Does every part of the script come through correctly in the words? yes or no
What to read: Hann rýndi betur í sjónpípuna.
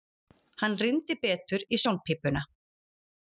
yes